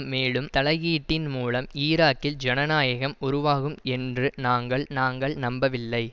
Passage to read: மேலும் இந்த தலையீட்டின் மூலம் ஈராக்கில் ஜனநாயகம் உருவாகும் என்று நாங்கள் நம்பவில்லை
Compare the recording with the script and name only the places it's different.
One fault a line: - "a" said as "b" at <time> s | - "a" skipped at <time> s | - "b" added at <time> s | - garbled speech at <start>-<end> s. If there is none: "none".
- "இந்த" skipped at 0.5 s
- "நாங்கள்" added at 4.9 s